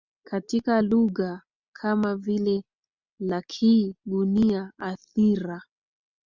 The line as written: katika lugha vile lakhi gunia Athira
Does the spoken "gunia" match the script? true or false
true